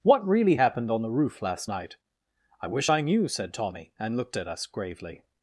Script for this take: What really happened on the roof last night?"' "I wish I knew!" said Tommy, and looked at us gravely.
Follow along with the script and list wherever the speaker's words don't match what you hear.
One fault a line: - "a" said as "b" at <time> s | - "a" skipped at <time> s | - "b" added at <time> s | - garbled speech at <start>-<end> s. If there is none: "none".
none